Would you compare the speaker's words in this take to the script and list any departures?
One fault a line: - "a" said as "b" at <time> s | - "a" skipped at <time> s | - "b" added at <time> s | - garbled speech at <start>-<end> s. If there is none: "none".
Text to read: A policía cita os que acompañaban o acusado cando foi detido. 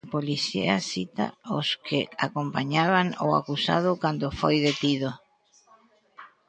none